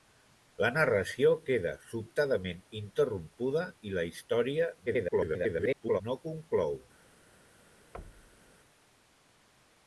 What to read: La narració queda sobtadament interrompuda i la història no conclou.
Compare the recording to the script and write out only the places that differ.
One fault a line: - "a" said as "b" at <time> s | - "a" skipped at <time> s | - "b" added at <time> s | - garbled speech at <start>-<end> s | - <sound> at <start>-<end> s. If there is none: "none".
- garbled speech at 4.9-6.0 s
- thud at 7.9-8.5 s